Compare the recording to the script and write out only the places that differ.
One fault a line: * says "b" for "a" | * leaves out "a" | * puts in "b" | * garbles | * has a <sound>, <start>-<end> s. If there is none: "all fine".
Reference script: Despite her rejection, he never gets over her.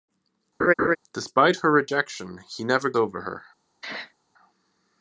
* has a laugh, 0.6-1.0 s
* leaves out "gets"
* has a sneeze, 3.8-4.1 s